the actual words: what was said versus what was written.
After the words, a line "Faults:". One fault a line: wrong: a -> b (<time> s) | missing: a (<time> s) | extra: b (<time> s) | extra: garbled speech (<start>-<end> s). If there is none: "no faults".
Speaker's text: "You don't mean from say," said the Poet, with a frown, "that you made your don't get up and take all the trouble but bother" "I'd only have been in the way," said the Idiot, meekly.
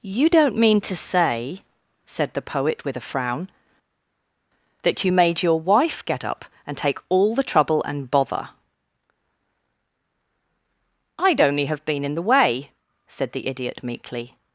"You don't mean to say," said the Poet, with a frown, "that you made your wife get up and take all the trouble and bother" "I'd only have been in the way," said the Idiot, meekly.
Faults:
wrong: from -> to (0.8 s)
wrong: don't -> wife (5.6 s)
wrong: but -> and (7.8 s)